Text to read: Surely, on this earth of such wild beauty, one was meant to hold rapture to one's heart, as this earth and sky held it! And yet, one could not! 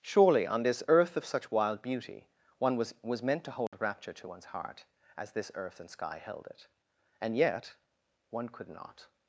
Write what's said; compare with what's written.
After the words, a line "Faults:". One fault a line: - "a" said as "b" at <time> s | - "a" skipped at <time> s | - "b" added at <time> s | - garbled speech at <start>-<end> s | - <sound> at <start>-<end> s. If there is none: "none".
Surely, on this earth of such wild beauty, one was was meant to hold rapture to one's heart, as this earth and sky held it! And yet, one could not!
Faults:
- "was" added at 3.0 s
- dropout at 3.7-3.7 s